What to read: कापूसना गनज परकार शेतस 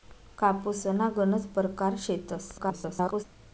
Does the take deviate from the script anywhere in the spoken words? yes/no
yes